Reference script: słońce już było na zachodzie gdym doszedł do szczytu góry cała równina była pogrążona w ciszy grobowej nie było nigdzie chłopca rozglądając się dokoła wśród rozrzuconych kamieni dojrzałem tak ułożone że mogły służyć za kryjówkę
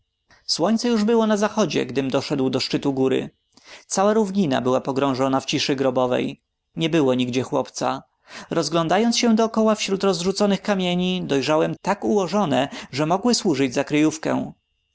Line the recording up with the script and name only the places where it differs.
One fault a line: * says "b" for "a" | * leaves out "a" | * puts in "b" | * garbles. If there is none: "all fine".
all fine